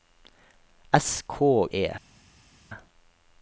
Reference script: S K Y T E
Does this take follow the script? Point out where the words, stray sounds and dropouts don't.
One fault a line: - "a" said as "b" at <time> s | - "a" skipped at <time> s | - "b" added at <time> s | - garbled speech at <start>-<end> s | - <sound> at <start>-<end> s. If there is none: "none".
- "Y T" skipped at 1.7 s